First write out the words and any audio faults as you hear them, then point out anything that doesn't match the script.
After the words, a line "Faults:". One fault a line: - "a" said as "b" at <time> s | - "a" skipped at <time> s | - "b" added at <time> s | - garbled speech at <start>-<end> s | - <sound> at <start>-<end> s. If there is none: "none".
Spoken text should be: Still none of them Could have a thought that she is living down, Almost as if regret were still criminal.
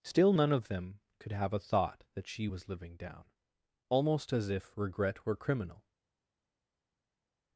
Still none of them Could have a thought that she was living down, Almost as if regret were criminal.
Faults:
- "is" said as "was" at 2.4 s
- "still" skipped at 5.4 s